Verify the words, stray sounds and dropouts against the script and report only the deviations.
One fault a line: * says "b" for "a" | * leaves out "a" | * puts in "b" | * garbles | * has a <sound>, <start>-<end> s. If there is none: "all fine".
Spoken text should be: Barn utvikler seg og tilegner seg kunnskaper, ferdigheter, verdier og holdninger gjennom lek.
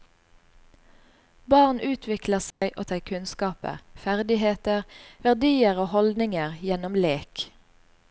* has a dropout, 2.5-2.6 s
* leaves out "tilegner"